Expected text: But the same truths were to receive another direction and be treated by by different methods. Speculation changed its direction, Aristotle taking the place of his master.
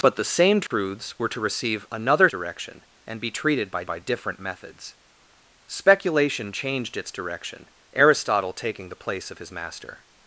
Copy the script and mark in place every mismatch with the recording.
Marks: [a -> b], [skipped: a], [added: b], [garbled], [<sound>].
But the same truths [dropout] were to receive another direction and be treated by by different methods. Speculation changed its direction, Aristotle taking the place of his master.